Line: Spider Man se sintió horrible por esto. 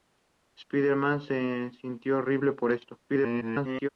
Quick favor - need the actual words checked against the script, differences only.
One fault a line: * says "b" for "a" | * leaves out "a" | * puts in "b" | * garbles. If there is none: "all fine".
* garbles